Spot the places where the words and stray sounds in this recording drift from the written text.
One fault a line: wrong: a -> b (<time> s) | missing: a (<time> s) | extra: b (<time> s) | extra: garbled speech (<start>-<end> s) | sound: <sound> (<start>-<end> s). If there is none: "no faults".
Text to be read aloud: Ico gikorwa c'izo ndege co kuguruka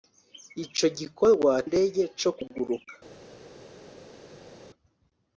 missing: c'izo (1.5 s)